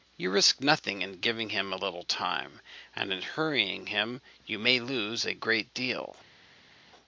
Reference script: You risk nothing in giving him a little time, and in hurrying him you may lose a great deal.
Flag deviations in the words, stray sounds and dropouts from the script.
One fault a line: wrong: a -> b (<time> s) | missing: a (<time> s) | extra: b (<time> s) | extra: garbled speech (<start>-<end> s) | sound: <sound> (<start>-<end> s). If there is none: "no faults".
no faults